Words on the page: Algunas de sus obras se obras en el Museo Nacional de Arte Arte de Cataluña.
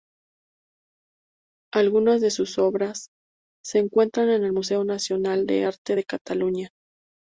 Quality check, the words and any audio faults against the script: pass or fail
fail